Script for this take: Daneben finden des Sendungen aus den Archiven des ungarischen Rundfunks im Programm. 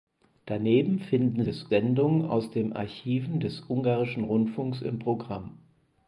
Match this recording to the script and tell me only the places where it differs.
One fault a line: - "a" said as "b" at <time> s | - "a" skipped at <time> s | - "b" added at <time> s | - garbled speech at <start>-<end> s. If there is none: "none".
none